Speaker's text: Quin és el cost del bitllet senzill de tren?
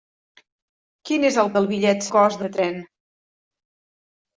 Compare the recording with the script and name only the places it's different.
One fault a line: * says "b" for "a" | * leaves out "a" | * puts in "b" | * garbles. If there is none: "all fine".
* leaves out "cost"
* says "cost" for "senzill"